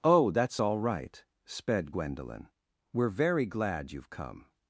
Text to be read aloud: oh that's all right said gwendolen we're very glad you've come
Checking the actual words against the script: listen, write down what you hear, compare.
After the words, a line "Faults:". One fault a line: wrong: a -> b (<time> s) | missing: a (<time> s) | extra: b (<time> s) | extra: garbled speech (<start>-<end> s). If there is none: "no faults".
oh that's all right sped gwendolen we're very glad you've come
Faults:
wrong: said -> sped (1.4 s)